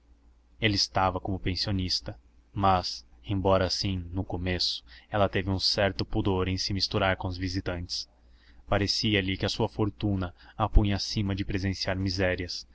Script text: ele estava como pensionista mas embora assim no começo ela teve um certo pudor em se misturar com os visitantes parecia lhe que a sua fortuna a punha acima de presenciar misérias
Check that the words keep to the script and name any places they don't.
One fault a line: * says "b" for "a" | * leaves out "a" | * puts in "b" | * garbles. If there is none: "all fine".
all fine